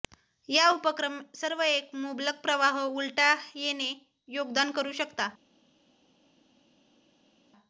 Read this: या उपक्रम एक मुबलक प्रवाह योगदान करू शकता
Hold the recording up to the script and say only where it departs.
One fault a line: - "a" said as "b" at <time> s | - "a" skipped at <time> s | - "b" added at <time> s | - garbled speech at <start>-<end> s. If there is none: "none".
- "सर्व" added at 1.3 s
- "उलटा येणे" added at 2.9 s